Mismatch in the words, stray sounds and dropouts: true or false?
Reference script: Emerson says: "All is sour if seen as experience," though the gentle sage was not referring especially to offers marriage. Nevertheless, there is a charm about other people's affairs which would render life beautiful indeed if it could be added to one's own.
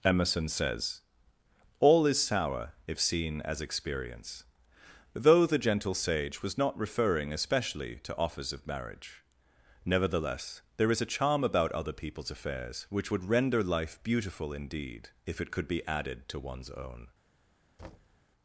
true